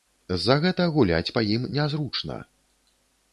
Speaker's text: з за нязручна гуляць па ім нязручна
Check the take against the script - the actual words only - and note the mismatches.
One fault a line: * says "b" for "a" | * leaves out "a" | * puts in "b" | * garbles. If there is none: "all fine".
* says "гэта" for "нязручна"